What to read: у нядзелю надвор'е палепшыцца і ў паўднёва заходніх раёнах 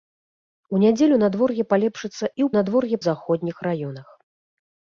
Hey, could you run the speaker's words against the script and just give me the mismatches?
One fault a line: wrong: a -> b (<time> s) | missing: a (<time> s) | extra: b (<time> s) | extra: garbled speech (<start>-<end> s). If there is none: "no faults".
wrong: паўднёва -> надвор'е (2.6 s)